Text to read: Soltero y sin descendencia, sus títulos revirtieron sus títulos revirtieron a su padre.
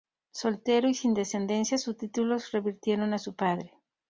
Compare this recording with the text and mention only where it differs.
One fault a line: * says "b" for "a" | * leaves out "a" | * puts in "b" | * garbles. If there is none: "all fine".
* leaves out "sus títulos revirtieron"